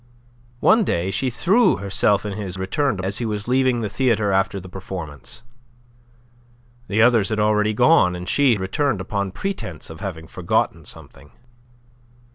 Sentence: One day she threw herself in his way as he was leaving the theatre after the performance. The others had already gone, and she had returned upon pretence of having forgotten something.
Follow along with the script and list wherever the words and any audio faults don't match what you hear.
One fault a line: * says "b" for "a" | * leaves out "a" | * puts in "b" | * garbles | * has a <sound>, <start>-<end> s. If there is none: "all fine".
* says "returned" for "way"
* leaves out "had"